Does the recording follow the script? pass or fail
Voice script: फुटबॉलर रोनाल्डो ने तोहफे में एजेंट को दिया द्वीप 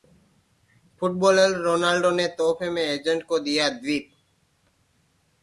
pass